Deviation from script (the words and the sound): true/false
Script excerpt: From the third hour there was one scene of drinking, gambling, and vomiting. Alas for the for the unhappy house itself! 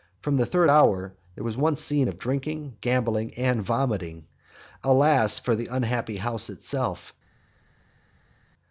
true